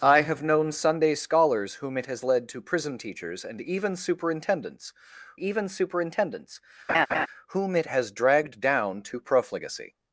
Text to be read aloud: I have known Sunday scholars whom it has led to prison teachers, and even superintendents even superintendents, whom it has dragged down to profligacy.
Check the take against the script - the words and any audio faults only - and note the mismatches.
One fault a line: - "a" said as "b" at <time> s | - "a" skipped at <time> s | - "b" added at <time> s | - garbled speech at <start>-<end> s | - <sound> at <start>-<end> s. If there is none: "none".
- laugh at 6.9-7.3 s